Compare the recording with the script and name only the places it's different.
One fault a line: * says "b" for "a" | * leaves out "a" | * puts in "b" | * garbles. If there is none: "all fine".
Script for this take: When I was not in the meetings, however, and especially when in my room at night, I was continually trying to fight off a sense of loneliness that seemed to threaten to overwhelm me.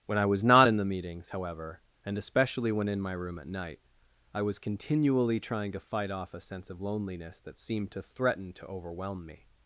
all fine